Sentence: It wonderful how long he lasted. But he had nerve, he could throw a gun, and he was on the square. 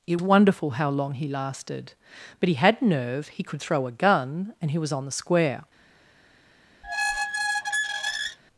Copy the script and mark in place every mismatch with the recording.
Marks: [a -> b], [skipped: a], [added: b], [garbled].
It wonderful how long he lasted. But he had nerve, he could throw a gun, and he was on the square.